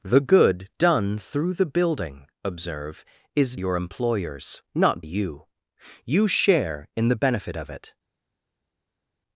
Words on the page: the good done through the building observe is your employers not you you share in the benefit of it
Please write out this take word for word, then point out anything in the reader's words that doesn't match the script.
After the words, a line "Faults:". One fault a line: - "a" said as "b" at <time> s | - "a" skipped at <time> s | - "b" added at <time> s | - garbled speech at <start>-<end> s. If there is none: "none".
the good done through the building observe is your employers not you you share in the benefit of it
Faults:
none